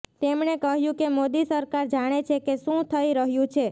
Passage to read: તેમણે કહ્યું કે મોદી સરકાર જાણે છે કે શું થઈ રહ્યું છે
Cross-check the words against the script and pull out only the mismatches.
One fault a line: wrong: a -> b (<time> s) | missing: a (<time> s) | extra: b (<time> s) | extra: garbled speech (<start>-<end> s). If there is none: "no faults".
no faults